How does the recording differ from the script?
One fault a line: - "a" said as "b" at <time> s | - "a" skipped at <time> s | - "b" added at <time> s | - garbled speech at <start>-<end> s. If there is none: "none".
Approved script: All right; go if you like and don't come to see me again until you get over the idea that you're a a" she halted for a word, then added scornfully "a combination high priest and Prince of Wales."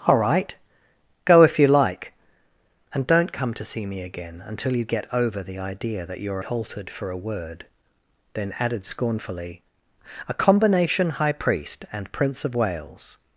- "a a she" skipped at 6.4 s